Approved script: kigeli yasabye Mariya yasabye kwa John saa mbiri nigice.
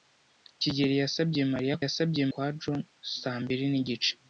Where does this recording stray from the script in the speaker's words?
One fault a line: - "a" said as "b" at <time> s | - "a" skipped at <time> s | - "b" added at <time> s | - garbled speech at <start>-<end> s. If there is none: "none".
none